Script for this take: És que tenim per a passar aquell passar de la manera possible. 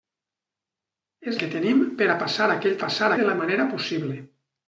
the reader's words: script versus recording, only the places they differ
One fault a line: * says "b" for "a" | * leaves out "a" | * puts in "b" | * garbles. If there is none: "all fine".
all fine